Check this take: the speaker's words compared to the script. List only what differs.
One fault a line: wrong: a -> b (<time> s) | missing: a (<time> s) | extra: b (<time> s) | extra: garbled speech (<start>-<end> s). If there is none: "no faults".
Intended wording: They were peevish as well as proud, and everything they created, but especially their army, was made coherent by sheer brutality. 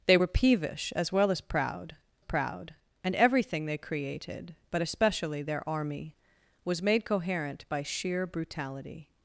extra: proud (2.2 s)